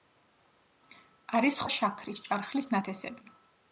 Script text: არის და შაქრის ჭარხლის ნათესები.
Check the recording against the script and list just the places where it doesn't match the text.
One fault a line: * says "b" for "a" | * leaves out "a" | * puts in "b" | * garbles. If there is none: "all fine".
all fine